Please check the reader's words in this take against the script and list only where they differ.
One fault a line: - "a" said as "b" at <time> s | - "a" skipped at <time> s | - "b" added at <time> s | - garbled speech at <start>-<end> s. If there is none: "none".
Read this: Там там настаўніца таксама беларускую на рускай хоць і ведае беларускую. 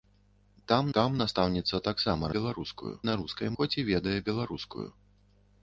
none